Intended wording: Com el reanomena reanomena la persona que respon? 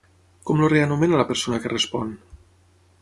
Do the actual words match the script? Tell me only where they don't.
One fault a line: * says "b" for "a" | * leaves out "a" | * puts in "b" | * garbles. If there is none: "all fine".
* leaves out "reanomena"